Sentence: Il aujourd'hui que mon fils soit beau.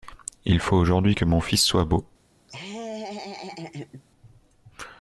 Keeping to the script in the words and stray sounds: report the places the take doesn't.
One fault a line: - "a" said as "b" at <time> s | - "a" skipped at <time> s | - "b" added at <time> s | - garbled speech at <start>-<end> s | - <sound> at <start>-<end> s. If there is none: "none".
- "faut" added at 0.6 s
- laugh at 2.5-4.0 s